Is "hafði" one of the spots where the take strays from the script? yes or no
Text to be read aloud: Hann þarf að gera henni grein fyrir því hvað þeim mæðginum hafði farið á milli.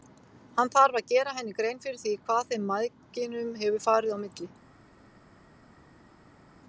yes